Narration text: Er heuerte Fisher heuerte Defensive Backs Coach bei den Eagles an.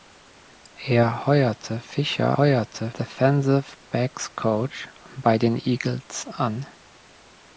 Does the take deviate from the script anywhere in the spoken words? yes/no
no